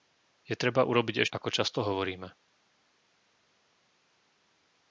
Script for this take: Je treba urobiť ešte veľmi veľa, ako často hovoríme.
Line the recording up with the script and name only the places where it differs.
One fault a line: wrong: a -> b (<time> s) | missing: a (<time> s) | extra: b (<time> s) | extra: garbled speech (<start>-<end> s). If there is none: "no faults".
missing: ešte veľmi veľa (1.3 s)